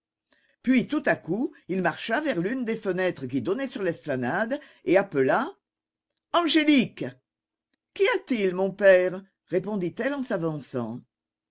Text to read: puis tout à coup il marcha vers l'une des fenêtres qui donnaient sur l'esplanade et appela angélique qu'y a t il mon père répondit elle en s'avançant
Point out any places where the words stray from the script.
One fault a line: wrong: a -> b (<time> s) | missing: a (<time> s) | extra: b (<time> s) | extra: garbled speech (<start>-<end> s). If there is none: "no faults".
no faults